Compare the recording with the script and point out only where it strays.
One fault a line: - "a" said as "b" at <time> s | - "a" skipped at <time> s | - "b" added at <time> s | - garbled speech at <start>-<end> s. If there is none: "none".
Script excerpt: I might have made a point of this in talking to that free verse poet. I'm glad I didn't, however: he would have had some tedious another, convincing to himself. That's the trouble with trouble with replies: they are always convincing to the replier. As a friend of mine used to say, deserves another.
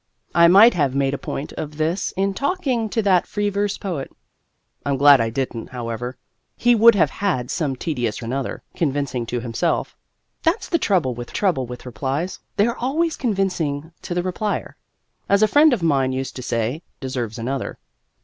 none